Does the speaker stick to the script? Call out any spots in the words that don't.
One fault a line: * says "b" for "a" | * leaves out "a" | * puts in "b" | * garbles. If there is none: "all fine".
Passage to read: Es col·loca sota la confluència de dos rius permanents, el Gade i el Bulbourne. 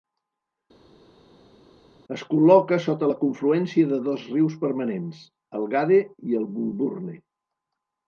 all fine